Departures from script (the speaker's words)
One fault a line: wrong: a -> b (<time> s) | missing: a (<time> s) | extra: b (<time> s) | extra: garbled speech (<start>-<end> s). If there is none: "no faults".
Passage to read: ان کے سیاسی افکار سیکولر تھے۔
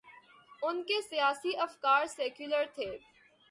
no faults